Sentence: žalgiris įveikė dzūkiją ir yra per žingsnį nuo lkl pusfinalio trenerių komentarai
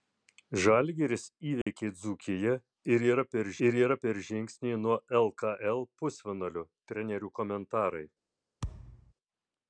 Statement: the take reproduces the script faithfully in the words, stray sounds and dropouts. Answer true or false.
false